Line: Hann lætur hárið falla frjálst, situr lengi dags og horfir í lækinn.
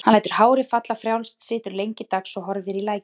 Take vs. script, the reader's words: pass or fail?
pass